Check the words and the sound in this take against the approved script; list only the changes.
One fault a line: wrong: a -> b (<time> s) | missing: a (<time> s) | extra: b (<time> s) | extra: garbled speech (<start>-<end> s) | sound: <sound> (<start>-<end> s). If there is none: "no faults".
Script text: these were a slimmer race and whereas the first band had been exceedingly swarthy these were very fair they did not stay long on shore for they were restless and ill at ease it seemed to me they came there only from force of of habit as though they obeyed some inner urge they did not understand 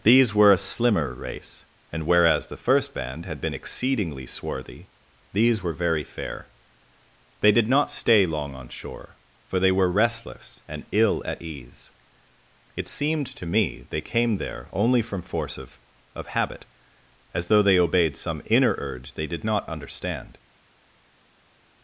no faults